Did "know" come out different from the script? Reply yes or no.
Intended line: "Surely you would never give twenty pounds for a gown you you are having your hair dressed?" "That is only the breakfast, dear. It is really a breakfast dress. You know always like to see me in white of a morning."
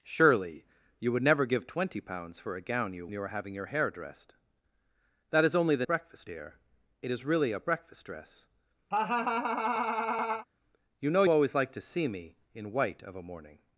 no